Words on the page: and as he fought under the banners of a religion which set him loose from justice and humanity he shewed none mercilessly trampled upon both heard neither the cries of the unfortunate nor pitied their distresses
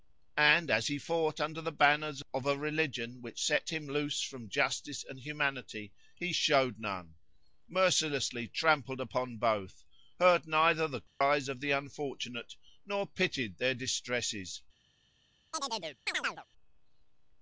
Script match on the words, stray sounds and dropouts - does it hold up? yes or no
no